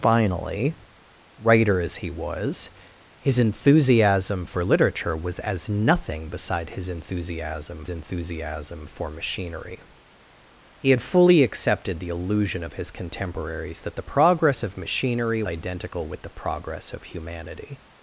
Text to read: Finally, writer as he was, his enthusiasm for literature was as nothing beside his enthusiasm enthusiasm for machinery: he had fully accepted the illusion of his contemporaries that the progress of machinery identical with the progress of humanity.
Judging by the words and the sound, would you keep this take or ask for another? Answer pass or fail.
pass